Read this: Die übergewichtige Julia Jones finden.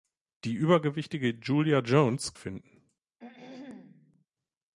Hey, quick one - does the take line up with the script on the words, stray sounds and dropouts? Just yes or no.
no